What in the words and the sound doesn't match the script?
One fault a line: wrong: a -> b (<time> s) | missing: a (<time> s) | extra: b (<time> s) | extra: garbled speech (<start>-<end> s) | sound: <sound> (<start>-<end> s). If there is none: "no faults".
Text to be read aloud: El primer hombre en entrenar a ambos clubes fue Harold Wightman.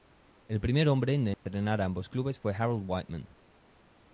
sound: dropout (1.3-1.5 s)